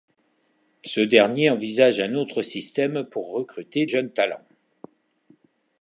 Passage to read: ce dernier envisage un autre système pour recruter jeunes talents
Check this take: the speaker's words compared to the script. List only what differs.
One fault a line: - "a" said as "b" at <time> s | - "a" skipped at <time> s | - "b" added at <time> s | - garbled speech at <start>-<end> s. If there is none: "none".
none